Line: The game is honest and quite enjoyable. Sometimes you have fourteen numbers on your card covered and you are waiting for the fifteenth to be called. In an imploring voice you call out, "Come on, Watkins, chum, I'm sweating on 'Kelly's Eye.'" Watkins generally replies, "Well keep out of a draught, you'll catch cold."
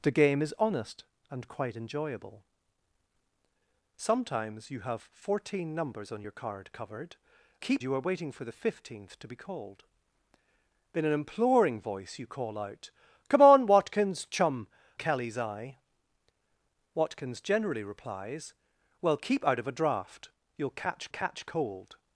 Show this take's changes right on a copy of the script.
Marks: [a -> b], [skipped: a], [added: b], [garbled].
The game is honest and quite enjoyable. Sometimes you have fourteen numbers on your card covered [and -> keep] you are waiting for the fifteenth to be called. In an imploring voice you call out, "Come on, Watkins, chum, [skipped: I'm sweating on] 'Kelly's Eye.'" Watkins generally replies, "Well keep out of a draught, you'll catch [added: catch] cold."